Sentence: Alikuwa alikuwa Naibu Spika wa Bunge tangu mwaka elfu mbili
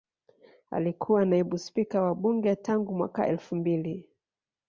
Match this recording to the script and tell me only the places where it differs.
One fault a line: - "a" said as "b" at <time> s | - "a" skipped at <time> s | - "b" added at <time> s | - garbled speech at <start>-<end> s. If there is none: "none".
- "alikuwa" skipped at 1.2 s